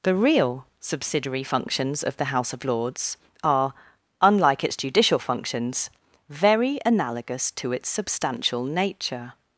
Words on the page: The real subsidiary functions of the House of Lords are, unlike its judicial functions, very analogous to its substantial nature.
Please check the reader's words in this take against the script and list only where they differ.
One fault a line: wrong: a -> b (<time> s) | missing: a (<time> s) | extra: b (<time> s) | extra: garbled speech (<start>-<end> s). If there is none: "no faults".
no faults